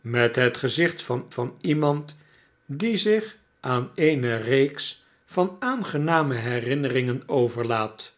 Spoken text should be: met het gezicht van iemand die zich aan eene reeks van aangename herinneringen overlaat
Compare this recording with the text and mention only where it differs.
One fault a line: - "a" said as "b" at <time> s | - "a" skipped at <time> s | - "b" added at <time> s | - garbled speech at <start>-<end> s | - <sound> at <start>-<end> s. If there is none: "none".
- "van" added at 1.3 s